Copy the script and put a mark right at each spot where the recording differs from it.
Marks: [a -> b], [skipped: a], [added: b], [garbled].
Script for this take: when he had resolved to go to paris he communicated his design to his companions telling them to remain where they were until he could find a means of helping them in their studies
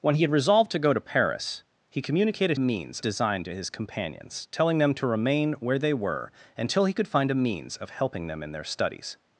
when he had resolved to go to paris he communicated [his -> means] design to his companions telling them to remain where they were until he could find a means of helping them in their studies